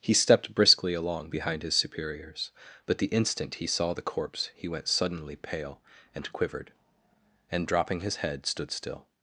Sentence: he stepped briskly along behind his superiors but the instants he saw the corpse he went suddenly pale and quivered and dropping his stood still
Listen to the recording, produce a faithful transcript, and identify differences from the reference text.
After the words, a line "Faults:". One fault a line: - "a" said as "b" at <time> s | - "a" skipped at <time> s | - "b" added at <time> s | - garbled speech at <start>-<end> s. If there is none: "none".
he stepped briskly along behind his superiors but the instant he saw the corpse he went suddenly pale and quivered and dropping his head stood still
Faults:
- "instants" said as "instant" at 3.1 s
- "head" added at 8.2 s